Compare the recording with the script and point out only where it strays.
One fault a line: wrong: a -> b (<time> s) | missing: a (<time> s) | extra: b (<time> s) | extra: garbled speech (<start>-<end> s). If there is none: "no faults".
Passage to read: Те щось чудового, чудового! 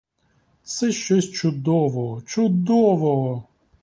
wrong: Те -> Це (0.6 s)